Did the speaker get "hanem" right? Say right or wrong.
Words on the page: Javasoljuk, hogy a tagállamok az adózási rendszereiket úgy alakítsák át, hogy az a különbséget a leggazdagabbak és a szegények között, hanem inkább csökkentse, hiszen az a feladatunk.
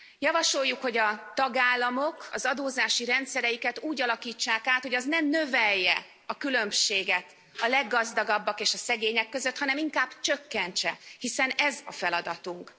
right